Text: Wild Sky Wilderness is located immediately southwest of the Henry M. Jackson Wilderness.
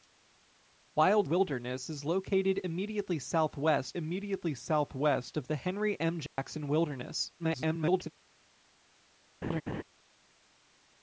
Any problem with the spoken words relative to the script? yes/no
yes